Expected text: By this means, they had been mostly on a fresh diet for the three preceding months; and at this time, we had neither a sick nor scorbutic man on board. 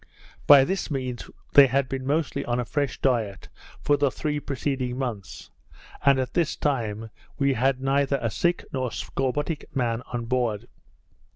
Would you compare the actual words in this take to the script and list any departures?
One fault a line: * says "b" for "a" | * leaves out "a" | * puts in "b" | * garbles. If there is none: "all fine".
all fine